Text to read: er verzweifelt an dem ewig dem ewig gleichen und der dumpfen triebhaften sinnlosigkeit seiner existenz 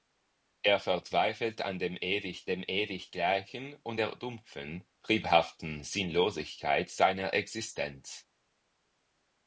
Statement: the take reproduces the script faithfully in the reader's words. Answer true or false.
true